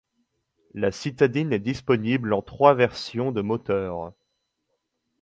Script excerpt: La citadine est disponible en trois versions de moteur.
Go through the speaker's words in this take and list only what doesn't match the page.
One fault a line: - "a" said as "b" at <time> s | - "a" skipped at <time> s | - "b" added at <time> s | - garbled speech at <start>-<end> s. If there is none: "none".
none